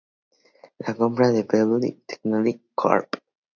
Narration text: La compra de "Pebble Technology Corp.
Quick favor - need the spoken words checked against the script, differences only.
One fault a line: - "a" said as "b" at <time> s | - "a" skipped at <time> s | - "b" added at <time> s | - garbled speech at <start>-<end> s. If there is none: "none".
none